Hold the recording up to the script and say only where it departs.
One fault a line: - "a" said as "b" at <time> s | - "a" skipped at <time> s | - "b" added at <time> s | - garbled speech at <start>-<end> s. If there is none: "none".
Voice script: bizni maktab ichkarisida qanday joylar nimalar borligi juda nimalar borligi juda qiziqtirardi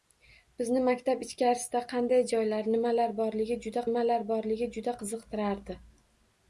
none